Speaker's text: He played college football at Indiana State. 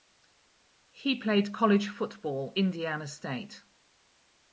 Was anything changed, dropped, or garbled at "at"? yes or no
yes